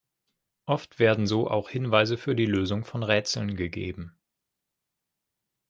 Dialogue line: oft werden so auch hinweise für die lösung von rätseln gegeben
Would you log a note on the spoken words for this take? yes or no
no